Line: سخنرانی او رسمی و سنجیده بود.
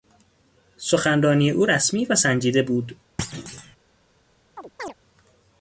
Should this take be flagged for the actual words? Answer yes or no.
no